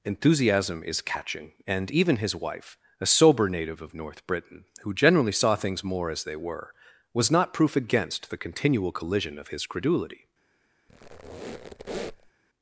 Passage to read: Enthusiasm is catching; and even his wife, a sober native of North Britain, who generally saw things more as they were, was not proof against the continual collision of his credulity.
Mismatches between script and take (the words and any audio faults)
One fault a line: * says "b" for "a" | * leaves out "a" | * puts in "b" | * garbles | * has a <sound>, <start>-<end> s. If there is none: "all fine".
* has a squeak, 10.9-12.3 s